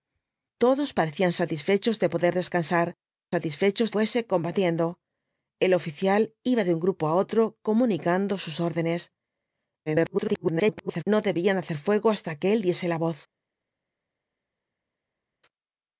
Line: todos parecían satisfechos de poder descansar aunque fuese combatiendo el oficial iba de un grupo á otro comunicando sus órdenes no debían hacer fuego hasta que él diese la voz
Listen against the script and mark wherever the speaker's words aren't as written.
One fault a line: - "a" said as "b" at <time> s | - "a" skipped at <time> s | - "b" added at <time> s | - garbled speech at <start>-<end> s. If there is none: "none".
- "aunque" said as "satisfechos" at 3.3 s
- garbled speech at 9.9-11.0 s